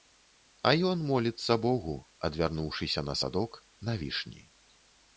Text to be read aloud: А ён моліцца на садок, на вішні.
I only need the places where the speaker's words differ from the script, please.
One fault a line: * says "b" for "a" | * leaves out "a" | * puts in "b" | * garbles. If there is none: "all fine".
* puts in "богу адвярнуўшыся"